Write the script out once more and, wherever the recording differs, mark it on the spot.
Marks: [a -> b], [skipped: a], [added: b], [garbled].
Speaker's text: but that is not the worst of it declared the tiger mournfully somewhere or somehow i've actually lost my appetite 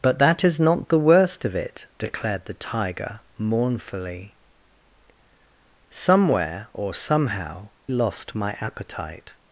but that is not the worst of it declared the tiger mournfully somewhere or somehow [skipped: i've actually] lost my appetite